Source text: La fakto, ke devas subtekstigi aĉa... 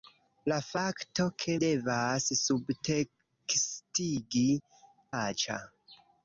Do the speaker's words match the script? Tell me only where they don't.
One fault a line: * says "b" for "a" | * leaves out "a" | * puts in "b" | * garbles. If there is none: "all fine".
all fine